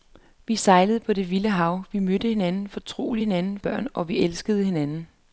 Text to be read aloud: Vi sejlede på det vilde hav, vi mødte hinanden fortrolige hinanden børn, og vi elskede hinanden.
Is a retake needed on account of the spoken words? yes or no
no